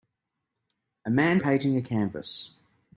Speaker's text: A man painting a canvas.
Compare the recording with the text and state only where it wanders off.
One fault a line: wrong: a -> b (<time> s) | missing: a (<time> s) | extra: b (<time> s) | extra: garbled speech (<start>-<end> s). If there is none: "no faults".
no faults